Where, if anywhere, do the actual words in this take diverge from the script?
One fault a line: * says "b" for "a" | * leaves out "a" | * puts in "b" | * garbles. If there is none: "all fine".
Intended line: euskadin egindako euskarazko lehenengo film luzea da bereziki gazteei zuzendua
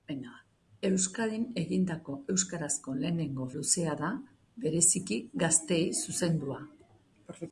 * leaves out "film"